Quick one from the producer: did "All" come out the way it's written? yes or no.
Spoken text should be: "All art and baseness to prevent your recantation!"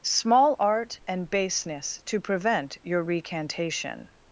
no